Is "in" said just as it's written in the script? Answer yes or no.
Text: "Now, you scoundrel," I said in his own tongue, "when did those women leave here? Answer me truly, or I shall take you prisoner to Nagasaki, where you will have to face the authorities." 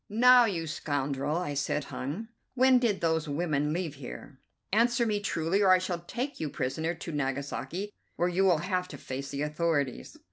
no